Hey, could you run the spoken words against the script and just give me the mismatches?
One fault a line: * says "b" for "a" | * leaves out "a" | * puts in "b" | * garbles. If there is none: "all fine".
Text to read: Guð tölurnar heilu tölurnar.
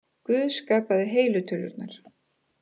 * says "skapaði" for "tölurnar"